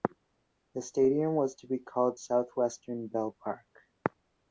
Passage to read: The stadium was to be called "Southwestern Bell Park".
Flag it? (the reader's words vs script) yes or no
no